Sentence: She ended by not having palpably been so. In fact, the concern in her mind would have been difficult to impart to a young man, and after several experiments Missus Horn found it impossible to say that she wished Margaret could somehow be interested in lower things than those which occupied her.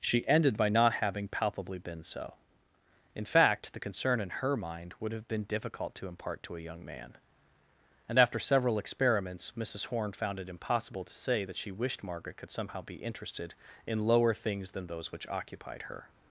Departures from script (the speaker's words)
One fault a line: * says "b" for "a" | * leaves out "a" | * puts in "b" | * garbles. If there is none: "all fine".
all fine